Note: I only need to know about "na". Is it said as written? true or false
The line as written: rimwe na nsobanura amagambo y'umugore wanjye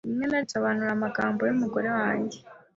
true